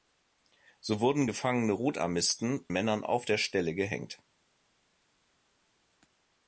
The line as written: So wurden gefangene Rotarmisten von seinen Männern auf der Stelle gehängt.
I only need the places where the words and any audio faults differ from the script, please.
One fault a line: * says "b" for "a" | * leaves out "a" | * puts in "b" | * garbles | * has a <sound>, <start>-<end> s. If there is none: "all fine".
* leaves out "von seinen"